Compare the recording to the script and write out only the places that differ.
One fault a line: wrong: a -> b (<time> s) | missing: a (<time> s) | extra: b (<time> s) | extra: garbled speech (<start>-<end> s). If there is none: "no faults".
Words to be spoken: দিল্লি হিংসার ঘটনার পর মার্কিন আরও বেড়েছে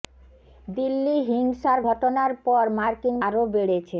no faults